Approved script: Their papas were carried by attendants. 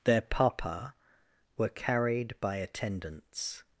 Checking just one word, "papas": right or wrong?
wrong